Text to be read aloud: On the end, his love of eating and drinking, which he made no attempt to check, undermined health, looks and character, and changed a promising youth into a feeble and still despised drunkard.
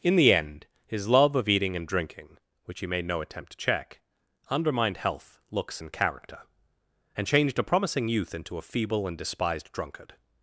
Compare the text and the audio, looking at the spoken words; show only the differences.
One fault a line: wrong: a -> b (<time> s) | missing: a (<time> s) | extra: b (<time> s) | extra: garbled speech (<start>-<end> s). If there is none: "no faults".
wrong: On -> In (0.0 s)
missing: still (9.2 s)